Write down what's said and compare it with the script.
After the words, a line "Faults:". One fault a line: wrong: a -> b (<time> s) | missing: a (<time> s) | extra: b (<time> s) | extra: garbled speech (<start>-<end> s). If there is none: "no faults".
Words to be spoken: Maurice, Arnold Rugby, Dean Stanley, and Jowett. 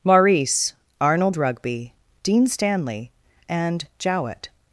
Maurice, Arnold Rugby, Dean Stanley, and Jowett.
Faults:
no faults